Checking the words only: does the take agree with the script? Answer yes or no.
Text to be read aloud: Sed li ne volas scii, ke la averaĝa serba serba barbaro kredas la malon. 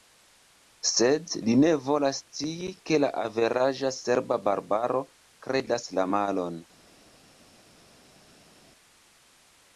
no